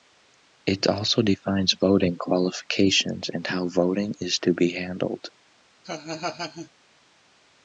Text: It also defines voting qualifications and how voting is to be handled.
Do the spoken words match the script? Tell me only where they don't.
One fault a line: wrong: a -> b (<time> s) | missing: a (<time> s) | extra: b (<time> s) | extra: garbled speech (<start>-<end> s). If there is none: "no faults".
no faults